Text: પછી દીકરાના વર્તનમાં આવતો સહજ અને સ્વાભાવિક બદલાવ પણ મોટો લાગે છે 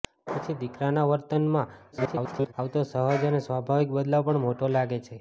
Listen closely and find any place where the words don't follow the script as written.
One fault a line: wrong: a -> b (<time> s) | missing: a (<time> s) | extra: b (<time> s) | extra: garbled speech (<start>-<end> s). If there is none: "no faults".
extra: garbled speech (1.9-2.5 s)